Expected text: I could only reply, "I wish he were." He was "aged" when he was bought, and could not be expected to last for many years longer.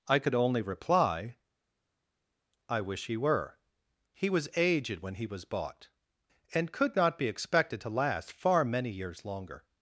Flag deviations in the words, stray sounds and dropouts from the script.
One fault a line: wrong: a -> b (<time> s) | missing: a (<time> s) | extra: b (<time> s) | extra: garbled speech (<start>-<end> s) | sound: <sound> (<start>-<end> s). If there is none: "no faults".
wrong: for -> far (8.3 s)